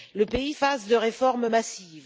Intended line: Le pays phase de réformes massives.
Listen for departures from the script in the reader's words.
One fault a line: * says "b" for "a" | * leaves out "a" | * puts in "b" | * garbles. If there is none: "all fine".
all fine